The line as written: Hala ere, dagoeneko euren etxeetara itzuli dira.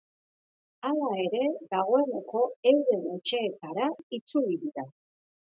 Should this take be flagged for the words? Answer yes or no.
no